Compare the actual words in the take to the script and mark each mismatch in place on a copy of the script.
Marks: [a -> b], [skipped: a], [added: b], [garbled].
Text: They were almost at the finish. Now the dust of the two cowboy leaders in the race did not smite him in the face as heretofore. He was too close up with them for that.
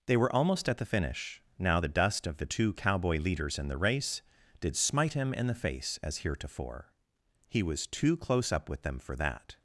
They were almost at the finish. Now the dust of the two cowboy leaders in the race did [skipped: not] smite him in the face as heretofore. He was too close up with them for that.